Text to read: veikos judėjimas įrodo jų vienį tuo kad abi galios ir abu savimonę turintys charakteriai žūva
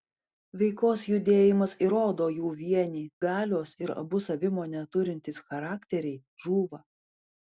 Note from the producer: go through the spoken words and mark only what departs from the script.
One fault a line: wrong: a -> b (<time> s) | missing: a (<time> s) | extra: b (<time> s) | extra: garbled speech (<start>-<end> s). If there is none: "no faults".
missing: tuo kad abi (3.0 s)